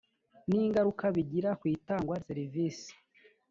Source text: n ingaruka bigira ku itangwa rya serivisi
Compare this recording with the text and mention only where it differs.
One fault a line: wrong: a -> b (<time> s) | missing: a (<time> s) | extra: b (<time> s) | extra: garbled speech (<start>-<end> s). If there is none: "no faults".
missing: rya (2.1 s)